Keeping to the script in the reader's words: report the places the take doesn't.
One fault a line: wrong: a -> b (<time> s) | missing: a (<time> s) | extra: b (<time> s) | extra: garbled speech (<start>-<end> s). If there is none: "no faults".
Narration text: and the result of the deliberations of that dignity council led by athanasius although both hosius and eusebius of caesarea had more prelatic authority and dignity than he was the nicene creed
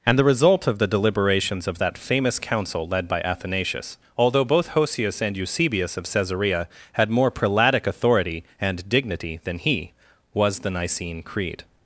wrong: dignity -> famous (2.0 s)